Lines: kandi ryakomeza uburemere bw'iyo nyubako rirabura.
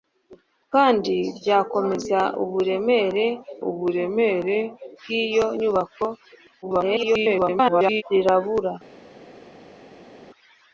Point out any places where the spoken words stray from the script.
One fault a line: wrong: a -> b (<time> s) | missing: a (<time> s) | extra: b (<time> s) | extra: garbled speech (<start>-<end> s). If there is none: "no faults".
extra: uburemere (3.7 s)
extra: garbled speech (6.6-8.0 s)